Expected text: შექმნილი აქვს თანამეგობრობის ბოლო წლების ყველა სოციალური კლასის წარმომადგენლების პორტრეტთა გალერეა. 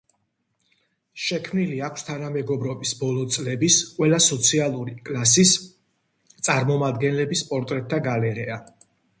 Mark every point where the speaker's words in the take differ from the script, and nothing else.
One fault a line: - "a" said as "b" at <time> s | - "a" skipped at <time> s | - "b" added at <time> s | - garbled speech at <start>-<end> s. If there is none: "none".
none